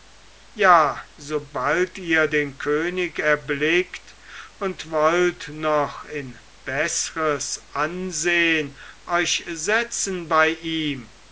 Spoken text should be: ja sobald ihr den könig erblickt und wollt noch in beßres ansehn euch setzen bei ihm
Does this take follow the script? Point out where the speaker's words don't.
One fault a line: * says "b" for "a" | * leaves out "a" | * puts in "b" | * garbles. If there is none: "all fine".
all fine